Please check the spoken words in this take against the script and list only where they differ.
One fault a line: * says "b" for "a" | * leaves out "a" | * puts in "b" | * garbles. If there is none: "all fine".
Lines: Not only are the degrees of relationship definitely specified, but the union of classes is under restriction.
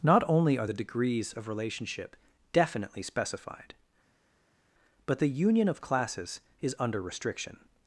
all fine